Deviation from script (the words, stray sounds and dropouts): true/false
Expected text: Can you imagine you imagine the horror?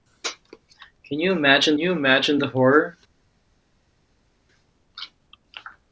false